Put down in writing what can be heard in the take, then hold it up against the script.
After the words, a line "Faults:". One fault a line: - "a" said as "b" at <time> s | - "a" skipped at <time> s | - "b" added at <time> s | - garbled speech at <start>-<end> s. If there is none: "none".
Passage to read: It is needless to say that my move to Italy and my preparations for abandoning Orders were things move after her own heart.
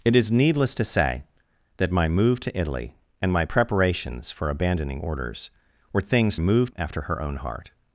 It is needless to say that my move to Italy and my preparations for abandoning Orders were things move after her own heart.
Faults:
none